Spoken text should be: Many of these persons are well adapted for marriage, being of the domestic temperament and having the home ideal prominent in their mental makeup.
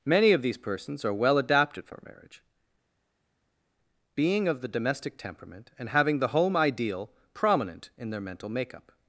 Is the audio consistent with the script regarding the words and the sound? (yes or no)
yes